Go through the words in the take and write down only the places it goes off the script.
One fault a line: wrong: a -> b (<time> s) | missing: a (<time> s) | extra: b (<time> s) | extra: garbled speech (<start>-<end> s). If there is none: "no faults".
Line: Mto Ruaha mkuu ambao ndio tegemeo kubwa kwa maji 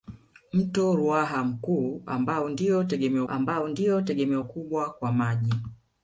extra: ambao ndio tegemeo (3.3 s)